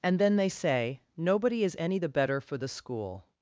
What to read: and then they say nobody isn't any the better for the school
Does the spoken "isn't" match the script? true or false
false